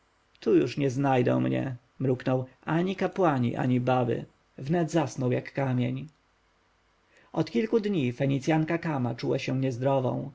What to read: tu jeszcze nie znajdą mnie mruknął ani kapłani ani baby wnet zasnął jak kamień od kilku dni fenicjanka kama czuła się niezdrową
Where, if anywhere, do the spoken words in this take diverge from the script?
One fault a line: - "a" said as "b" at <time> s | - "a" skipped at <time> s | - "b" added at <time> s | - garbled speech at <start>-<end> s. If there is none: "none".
- "jeszcze" said as "już" at 0.6 s